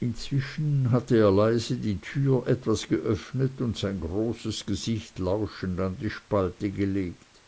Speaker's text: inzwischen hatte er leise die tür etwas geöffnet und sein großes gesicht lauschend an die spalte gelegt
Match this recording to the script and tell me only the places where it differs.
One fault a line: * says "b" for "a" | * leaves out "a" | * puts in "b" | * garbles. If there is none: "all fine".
all fine